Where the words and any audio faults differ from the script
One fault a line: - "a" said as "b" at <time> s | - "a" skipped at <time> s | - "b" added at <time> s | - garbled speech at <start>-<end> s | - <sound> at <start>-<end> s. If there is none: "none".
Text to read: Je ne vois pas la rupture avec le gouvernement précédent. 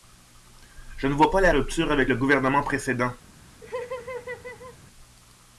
- laugh at 3.6-4.8 s